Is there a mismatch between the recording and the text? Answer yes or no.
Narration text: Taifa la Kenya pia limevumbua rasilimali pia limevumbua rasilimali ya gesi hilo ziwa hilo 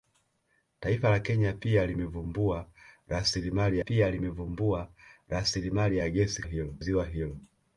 no